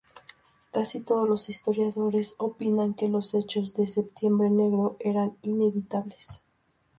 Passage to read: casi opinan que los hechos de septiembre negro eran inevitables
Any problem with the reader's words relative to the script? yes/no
yes